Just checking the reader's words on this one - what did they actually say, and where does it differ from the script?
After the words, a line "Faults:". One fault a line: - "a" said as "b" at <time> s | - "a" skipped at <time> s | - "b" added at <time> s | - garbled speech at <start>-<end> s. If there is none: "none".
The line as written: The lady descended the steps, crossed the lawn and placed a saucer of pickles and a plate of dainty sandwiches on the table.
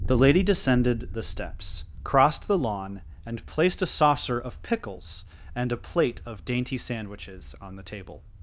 The lady descended the steps, crossed the lawn and placed a saucer of pickles and a plate of dainty sandwiches on the table.
Faults:
none